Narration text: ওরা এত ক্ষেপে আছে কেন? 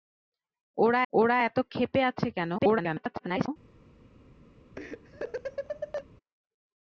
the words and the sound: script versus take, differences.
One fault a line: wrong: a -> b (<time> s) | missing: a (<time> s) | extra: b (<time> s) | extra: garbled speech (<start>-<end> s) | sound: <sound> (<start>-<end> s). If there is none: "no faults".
extra: ওরা (1.1 s)
extra: garbled speech (2.6-3.5 s)
sound: laugh (4.8-6.1 s)